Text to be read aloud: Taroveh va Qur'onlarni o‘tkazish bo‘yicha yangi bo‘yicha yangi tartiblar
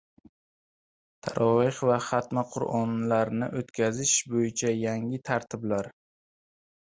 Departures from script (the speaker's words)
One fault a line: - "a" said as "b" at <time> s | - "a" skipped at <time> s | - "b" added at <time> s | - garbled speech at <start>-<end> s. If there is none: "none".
- "xatmi" added at 2.0 s
- "bo‘yicha yangi" skipped at 5.2 s